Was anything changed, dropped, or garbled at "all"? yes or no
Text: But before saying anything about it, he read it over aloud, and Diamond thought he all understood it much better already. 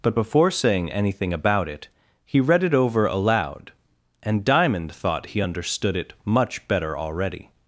yes